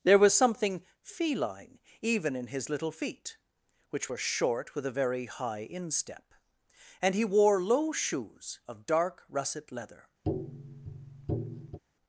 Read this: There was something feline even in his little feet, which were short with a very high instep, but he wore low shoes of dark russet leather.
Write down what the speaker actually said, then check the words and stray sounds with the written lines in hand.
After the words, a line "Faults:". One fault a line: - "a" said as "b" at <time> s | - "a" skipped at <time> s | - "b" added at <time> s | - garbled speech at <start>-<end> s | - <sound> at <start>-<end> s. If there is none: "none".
There was something feline even in his little feet, which were short with a very high instep, and he wore low shoes of dark russet leather.
Faults:
- "but" said as "and" at 7.0 s
- tap at 10.2-11.8 s